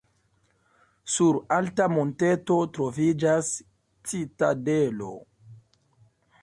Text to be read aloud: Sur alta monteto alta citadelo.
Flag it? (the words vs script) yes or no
yes